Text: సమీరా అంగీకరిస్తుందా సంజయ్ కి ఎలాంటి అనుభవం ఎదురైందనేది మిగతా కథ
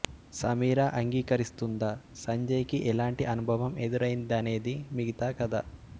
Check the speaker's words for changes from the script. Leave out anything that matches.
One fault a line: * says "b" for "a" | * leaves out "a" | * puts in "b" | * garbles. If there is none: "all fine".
all fine